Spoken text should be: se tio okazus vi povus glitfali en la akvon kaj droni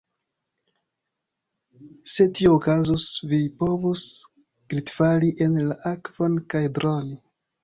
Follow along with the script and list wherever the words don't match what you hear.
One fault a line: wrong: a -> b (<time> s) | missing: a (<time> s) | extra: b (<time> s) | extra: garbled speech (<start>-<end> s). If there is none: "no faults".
no faults